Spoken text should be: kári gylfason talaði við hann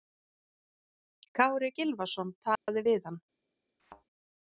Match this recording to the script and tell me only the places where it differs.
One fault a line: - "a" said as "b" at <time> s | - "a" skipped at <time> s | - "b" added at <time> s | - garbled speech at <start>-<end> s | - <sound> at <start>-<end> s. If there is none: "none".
- dropout at 2.6-2.7 s
- thud at 3.8-4.0 s